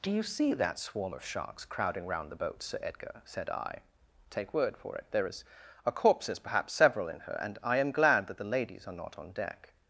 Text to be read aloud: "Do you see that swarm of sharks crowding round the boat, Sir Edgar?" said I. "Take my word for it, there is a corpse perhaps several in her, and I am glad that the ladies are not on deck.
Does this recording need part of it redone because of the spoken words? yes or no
yes